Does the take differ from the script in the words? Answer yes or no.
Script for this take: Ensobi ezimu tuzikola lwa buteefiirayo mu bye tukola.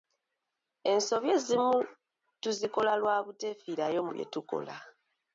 no